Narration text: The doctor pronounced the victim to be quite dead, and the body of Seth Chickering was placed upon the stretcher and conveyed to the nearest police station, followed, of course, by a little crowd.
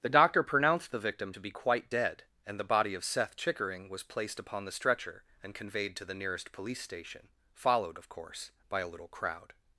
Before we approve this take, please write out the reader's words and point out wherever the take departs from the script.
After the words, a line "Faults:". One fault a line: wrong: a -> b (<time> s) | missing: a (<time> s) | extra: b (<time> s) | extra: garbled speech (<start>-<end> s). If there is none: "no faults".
The doctor pronounced the victim to be quite dead, and the body of Seth Chickering was placed upon the stretcher and conveyed to the nearest police station, followed, of course, by a little crowd.
Faults:
no faults